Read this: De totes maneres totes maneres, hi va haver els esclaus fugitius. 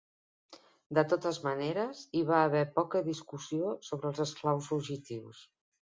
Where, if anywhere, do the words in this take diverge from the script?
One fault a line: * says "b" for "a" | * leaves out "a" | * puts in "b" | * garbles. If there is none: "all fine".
* leaves out "totes maneres"
* puts in "poca discussió sobre"